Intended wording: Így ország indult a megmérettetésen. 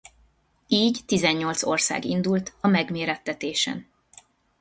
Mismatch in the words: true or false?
true